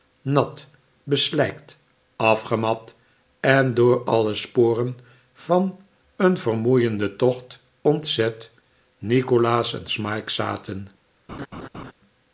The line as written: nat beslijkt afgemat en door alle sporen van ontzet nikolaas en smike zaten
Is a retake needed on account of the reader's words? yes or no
yes